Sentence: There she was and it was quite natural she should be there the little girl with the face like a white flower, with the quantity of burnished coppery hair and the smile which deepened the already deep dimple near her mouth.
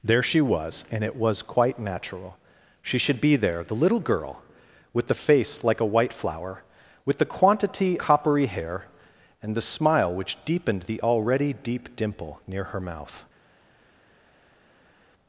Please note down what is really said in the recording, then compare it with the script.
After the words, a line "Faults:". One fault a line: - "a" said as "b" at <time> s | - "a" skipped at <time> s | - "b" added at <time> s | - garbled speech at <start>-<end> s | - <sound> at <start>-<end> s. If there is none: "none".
There she was and it was quite natural she should be there the little girl with the face like a white flower, with the quantity coppery hair and the smile which deepened the already deep dimple near her mouth.
Faults:
- "of burnished" skipped at 8.0 s